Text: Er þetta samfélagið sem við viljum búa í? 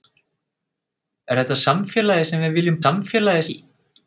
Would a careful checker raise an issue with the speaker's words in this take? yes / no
yes